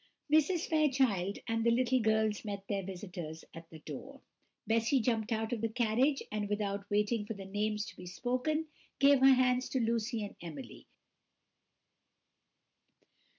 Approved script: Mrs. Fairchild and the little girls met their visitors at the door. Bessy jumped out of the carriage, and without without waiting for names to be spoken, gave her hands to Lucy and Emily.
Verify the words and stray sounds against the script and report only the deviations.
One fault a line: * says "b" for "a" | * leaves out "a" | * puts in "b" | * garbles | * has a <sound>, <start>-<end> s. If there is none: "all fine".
* leaves out "without"
* puts in "the"